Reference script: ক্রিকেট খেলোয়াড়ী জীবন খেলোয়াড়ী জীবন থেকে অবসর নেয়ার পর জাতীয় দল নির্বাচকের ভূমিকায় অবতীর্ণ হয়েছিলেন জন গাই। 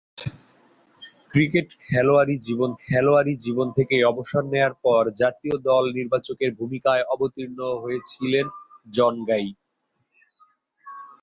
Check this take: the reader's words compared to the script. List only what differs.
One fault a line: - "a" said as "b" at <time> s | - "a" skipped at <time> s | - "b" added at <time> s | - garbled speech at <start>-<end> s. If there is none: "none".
none